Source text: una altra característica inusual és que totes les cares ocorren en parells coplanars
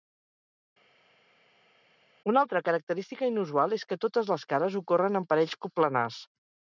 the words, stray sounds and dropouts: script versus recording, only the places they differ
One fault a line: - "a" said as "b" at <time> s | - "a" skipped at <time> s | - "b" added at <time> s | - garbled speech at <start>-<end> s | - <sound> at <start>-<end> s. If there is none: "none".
none